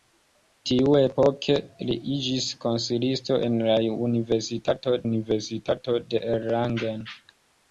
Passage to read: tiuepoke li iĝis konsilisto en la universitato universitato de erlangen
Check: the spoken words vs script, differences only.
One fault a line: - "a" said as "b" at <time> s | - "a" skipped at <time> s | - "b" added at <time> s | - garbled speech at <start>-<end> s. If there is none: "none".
none